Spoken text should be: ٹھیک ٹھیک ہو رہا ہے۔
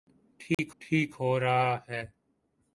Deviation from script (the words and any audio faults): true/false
true